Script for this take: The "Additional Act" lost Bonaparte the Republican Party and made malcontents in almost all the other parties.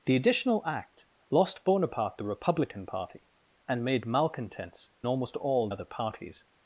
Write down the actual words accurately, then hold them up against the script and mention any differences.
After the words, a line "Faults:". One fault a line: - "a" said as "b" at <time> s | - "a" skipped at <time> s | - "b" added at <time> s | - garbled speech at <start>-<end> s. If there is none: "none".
The "Additional Act" lost Bonaparte the Republican Party and made malcontents almost all other parties.
Faults:
- "in" skipped at 4.9 s
- "the" skipped at 5.7 s